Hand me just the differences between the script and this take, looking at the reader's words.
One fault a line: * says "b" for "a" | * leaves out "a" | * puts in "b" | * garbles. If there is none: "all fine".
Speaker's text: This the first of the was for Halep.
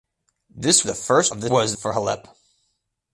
all fine